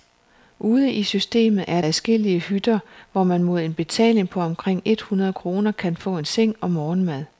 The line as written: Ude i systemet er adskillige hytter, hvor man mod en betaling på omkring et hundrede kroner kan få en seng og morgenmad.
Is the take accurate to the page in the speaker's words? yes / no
yes